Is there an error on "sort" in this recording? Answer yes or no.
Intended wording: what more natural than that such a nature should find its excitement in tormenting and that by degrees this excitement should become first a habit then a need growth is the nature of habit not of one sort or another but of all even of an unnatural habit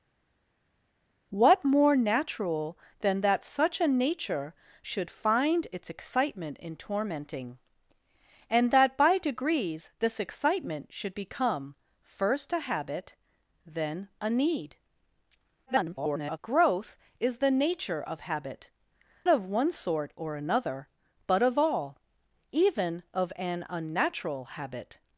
no